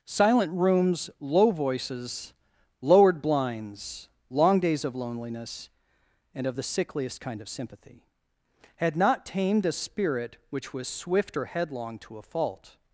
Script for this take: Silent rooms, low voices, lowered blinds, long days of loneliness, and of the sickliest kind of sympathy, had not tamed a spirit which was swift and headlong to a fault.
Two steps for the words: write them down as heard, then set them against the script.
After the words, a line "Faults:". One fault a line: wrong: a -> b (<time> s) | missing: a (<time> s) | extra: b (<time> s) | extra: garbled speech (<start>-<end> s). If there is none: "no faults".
Silent rooms, low voices, lowered blinds, long days of loneliness, and of the sickliest kind of sympathy, had not tamed a spirit which was swift or headlong to a fault.
Faults:
wrong: and -> or (11.4 s)